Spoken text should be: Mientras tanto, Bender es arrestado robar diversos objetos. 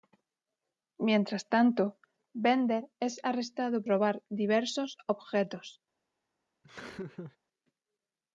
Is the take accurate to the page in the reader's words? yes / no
yes